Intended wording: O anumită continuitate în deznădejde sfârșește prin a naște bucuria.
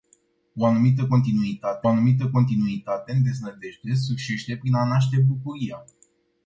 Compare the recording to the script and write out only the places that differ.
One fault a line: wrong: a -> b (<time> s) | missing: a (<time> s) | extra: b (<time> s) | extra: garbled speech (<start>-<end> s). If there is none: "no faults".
extra: anumită continuitate (1.9 s)